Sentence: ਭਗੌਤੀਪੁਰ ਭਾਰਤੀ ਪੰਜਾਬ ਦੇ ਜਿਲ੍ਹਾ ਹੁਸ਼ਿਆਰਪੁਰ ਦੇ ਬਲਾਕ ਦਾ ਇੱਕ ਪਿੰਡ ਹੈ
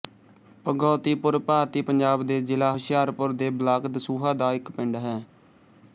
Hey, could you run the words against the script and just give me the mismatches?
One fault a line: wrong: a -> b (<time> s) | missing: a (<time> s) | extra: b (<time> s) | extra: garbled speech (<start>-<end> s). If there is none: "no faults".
extra: ਦਸੂਹਾ (3.9 s)